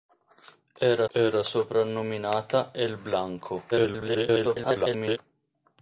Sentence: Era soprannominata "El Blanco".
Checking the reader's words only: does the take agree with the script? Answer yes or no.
no